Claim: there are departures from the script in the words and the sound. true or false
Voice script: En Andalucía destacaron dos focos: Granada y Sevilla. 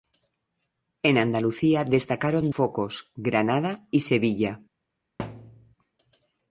true